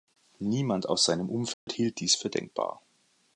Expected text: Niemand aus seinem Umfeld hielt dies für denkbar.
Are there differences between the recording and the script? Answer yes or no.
no